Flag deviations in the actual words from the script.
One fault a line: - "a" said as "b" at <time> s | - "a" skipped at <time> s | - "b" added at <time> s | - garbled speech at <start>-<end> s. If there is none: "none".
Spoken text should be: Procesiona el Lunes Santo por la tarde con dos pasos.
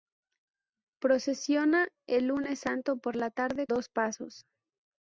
- "con" skipped at 3.7 s